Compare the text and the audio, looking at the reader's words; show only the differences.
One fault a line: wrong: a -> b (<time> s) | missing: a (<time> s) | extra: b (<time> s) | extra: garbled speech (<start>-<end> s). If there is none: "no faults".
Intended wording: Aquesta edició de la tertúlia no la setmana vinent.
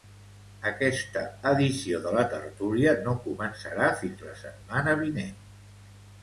extra: començarà fins (3.3 s)